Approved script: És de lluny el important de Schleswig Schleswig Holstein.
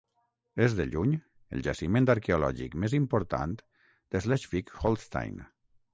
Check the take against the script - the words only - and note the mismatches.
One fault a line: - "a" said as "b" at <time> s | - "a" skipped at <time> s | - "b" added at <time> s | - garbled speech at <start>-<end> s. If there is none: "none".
- "jaciment arqueològic més" added at 1.7 s
- "Schleswig" skipped at 4.7 s